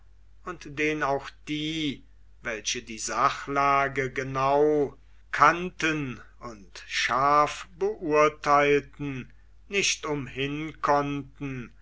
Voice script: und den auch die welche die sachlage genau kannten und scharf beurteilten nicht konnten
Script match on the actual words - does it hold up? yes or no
no